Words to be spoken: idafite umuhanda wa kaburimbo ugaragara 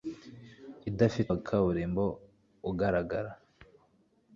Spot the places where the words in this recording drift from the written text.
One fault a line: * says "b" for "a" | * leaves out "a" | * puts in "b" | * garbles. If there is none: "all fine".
* leaves out "umuhanda"